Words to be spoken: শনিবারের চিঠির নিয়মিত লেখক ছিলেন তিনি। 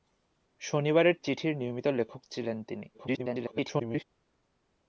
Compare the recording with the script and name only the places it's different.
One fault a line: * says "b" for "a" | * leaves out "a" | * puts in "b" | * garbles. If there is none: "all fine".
* garbles